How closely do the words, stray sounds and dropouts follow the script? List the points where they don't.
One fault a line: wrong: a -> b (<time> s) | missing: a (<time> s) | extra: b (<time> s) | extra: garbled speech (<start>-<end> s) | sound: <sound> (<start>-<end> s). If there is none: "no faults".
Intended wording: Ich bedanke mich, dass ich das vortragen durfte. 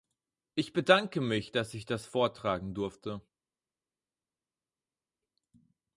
no faults